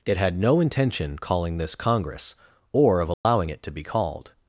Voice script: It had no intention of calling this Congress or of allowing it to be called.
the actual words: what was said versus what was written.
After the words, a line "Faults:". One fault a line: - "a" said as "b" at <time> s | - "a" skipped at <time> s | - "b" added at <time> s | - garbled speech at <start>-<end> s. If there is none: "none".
It had no intention calling this Congress or of allowing it to be called.
Faults:
- "of" skipped at 1.2 s